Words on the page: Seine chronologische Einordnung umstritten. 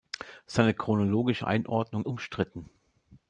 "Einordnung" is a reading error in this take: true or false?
false